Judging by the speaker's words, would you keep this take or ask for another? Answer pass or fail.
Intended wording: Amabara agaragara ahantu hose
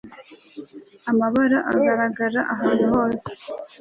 pass